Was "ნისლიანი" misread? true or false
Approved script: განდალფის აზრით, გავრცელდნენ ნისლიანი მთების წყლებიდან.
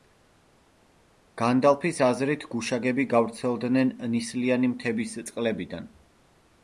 false